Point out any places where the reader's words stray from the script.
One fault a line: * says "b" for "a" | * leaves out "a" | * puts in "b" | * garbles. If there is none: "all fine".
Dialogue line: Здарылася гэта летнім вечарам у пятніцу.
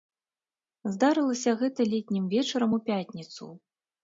all fine